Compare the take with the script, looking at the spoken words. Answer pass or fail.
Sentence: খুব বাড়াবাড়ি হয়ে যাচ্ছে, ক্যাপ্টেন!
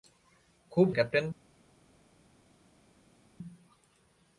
fail